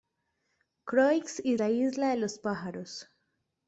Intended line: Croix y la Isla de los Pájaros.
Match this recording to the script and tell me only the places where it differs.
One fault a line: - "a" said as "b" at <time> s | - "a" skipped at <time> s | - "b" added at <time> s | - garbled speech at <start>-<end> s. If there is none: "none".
none